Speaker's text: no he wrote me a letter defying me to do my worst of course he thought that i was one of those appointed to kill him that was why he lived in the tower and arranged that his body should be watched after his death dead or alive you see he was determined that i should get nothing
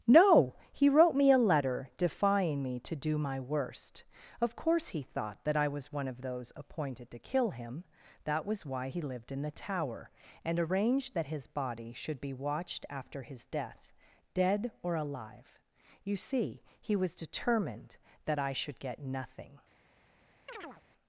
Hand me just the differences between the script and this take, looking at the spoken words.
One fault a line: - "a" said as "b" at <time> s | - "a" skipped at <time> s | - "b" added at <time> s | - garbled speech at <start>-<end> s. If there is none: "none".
none